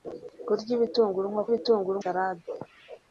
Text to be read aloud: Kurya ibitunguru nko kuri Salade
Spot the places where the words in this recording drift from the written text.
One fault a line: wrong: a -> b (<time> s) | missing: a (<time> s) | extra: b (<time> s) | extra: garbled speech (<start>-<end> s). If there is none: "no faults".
wrong: kuri -> ibitunguru (1.5 s)